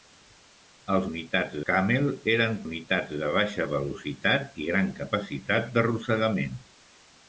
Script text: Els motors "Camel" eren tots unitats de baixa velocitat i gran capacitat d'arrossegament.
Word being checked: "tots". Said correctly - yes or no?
no